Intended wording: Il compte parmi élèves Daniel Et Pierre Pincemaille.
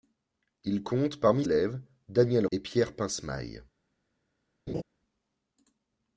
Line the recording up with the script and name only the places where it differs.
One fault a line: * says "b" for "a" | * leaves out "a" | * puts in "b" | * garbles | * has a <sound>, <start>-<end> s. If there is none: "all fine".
* has a laugh, 4.7-4.8 s